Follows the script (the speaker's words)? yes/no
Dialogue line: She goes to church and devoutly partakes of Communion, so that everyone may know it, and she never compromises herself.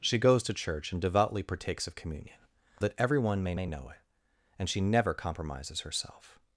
no